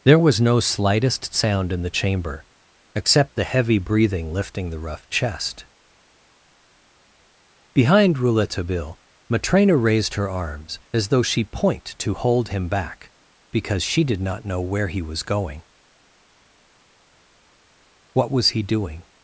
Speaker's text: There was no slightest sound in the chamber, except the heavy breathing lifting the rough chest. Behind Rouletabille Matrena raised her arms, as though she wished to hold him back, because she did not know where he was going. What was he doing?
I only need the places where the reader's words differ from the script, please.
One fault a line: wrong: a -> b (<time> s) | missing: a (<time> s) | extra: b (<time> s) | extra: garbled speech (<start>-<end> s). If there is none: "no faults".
wrong: wished -> point (11.4 s)